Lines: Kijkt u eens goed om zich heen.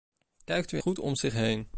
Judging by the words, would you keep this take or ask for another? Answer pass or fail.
fail